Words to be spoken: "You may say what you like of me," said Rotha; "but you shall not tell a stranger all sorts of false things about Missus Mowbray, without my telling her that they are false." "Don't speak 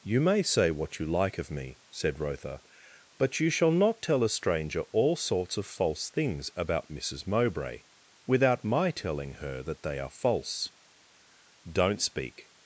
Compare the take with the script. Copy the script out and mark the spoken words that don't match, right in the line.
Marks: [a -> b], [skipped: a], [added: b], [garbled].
"You may say what you like of me," said Rotha; "but you shall not tell a stranger all sorts of false things about Missus Mowbray, without my telling her that they are false." "Don't speak